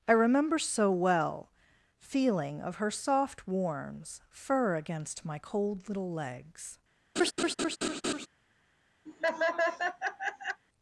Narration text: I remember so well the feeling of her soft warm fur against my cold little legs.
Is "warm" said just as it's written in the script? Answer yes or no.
no